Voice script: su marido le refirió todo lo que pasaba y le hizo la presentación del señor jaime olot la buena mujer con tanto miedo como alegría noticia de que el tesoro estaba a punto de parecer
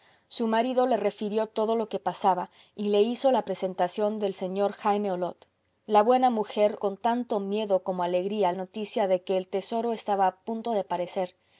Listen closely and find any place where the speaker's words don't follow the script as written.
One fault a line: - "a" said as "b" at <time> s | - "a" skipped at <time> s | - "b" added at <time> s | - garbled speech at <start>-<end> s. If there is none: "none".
none